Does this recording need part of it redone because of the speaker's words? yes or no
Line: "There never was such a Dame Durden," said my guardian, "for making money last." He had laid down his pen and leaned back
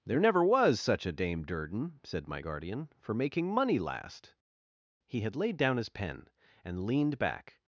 no